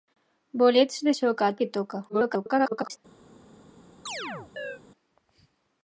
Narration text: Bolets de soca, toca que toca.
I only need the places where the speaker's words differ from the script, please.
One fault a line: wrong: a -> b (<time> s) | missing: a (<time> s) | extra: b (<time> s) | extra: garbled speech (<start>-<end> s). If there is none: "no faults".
missing: toca (1.5 s)
extra: garbled speech (2.1-3.0 s)